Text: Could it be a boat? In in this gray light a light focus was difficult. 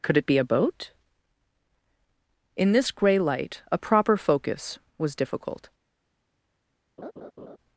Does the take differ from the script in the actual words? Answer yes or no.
yes